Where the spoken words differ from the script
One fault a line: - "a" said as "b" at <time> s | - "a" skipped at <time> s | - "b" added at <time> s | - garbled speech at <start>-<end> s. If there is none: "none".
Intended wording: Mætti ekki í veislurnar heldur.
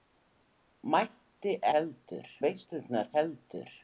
- "ekki" said as "heldur" at 1.8 s